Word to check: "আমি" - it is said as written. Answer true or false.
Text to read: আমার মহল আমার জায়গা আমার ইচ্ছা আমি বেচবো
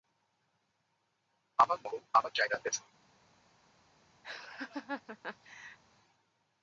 false